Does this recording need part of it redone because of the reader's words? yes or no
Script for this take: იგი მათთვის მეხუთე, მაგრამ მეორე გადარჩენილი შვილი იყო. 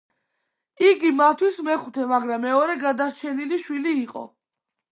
no